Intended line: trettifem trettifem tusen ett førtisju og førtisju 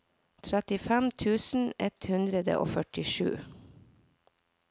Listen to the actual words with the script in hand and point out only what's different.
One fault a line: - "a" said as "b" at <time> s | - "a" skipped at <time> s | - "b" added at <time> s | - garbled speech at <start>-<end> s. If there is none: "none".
- "trettifem" skipped at 1.1 s
- "førtisju" said as "hundre" at 2.1 s